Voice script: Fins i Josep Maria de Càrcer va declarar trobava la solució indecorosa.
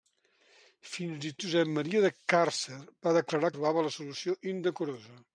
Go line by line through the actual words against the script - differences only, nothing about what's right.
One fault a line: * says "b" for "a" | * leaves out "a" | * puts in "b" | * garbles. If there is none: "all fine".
all fine